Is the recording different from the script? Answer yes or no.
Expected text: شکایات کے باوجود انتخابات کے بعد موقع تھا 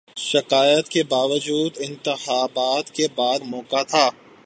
no